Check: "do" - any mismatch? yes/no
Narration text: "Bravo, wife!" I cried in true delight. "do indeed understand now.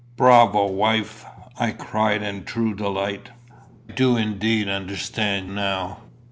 no